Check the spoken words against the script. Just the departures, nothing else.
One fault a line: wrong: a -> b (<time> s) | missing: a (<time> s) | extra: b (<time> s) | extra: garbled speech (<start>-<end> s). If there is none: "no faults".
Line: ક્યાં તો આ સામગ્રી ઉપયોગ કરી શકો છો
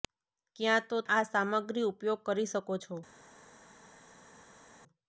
no faults